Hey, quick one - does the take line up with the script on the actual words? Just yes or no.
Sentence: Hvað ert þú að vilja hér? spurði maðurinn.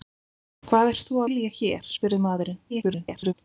no